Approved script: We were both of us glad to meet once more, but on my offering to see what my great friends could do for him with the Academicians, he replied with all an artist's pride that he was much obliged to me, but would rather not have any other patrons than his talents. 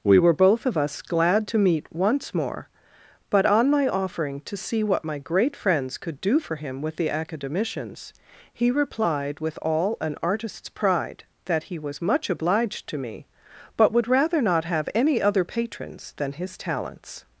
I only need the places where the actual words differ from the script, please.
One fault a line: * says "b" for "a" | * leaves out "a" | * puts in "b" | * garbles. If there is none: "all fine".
all fine